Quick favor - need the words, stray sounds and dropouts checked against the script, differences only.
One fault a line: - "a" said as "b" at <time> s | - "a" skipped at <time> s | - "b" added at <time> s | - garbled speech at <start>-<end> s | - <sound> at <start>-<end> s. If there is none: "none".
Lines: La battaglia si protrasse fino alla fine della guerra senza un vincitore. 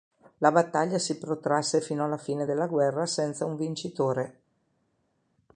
none